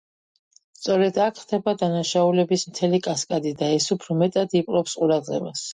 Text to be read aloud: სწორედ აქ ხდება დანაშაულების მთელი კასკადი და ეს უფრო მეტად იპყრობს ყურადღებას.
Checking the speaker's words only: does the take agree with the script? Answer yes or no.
yes